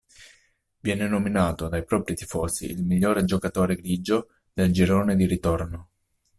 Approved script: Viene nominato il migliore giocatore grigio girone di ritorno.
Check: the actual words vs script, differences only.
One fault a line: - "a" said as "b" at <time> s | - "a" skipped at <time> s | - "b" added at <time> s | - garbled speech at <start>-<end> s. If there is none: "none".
- "dai propri tifosi" added at 1.7 s
- "del" added at 4.5 s